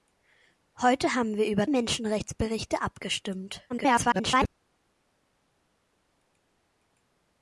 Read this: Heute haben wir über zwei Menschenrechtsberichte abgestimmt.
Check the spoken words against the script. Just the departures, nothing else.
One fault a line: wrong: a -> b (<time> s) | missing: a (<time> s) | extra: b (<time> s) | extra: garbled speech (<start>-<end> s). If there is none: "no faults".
missing: zwei (1.7 s)
extra: garbled speech (3.7-4.5 s)